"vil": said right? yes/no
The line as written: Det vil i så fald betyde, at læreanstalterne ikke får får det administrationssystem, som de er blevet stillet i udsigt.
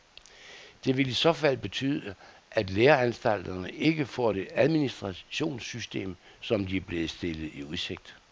yes